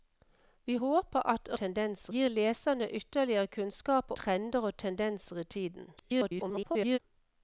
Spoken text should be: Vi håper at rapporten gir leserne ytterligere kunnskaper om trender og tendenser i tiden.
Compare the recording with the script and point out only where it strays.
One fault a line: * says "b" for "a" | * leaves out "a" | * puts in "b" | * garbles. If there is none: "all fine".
* says "tendenser" for "rapporten"
* leaves out "om"
* garbles